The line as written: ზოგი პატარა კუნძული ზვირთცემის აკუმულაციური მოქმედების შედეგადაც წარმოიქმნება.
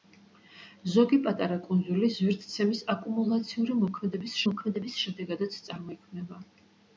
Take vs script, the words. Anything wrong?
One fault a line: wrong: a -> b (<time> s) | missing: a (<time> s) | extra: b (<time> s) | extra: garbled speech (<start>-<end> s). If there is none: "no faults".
extra: მოქმედების (4.5 s)